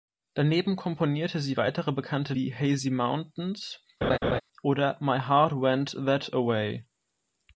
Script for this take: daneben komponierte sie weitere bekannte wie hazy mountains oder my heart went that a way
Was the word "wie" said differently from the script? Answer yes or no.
no